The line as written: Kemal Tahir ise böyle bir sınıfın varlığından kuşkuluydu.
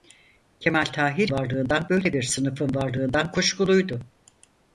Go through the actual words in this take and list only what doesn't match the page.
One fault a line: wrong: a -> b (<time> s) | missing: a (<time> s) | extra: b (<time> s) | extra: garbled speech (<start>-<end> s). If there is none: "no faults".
wrong: ise -> varlığından (1.3 s)